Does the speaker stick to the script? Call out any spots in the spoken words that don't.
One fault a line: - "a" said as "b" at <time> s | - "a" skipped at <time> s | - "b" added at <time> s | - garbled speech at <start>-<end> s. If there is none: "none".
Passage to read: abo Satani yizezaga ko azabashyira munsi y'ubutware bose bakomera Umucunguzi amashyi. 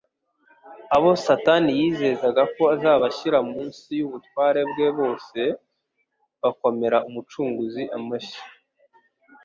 - "bwe" added at 4.7 s